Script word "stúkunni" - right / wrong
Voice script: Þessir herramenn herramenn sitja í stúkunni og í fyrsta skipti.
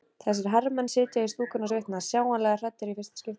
right